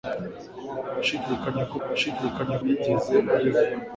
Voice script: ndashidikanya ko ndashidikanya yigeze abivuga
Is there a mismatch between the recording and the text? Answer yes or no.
no